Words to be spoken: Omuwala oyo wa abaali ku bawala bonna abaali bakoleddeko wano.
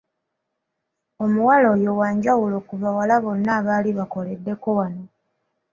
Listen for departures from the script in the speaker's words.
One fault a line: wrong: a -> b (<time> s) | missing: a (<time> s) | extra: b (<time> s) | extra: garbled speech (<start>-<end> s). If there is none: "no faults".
wrong: abaali -> njawulo (2.2 s)